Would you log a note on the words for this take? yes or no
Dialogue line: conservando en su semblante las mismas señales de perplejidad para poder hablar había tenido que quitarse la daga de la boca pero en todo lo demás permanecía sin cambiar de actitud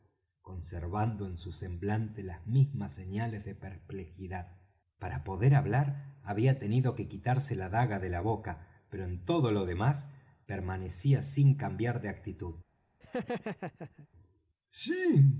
no